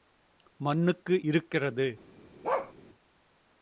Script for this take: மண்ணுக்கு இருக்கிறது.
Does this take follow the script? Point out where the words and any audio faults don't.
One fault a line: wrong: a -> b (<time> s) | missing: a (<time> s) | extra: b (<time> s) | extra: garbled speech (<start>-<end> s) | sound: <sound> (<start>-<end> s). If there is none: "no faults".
sound: bark (2.4-2.7 s)